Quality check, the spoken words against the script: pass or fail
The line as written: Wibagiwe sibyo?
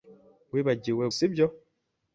pass